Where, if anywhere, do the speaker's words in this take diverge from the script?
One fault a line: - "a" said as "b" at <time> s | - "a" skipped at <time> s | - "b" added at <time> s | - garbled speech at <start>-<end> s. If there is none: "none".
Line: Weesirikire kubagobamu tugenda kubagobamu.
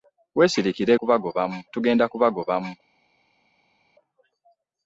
none